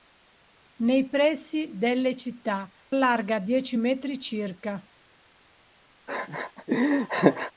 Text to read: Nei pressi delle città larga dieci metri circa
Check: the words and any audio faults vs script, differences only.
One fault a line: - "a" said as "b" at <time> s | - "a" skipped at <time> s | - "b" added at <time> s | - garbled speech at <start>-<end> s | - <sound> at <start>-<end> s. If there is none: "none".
- laugh at 6.1-7.5 s